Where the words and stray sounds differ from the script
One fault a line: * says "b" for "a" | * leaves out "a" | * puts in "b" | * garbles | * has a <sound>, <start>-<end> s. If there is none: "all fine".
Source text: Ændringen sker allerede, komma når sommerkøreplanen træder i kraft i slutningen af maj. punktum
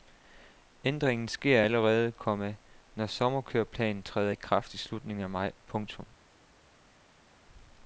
all fine